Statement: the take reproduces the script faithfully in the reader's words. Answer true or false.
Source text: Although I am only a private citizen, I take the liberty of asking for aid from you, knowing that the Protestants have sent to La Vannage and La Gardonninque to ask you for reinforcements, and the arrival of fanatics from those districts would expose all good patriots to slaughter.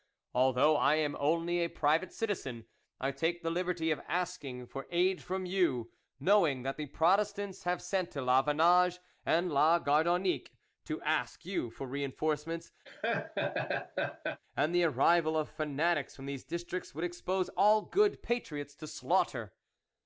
false